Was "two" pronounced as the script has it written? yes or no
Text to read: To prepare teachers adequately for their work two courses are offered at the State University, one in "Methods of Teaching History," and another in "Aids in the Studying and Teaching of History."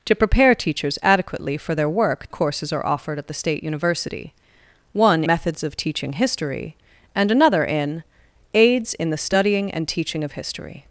no